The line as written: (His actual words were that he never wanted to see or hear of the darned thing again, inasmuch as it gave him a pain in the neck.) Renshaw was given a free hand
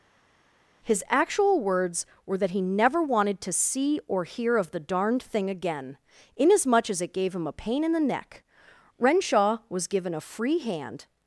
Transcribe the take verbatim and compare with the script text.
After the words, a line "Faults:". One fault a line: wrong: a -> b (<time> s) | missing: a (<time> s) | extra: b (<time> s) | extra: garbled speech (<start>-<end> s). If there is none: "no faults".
(His actual words were that he never wanted to see or hear of the darned thing again, inasmuch as it gave him a pain in the neck.) Renshaw was given a free hand
Faults:
no faults